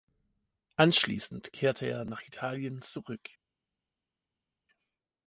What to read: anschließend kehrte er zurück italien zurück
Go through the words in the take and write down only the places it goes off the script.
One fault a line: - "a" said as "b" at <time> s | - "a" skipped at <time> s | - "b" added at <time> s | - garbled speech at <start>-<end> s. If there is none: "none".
- "zurück" said as "nach" at 2.1 s